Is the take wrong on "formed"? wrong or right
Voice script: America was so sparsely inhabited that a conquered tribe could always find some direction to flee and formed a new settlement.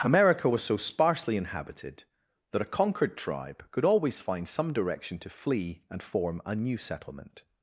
wrong